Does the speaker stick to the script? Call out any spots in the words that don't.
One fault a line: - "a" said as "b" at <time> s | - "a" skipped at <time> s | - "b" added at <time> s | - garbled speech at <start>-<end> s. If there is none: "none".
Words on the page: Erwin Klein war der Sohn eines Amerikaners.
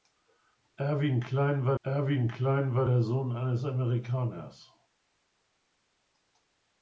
- "erwin Klein war" added at 1.8 s